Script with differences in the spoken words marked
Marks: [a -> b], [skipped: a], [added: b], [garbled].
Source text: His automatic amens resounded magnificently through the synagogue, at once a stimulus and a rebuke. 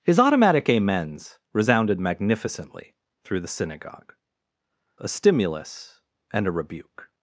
His automatic amens resounded magnificently through the synagogue, [skipped: at once] a stimulus and a rebuke.